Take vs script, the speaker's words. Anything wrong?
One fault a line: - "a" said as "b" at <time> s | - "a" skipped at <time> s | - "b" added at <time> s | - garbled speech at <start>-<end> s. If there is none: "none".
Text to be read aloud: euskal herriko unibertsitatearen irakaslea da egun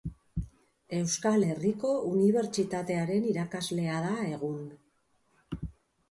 none